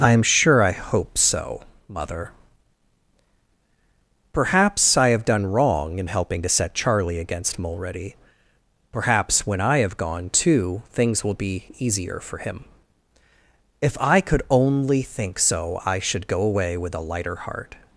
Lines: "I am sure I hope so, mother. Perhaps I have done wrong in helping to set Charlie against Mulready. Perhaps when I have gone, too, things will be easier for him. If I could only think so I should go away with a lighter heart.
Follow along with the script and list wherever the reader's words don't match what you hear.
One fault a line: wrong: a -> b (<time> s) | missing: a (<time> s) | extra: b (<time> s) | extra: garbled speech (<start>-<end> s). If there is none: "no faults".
no faults